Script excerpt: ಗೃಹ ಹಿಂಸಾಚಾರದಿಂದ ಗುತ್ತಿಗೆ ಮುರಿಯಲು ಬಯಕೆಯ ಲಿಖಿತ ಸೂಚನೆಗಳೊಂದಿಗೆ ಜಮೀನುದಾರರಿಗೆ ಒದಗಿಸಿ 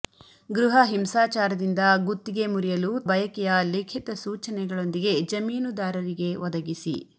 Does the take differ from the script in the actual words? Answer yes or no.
no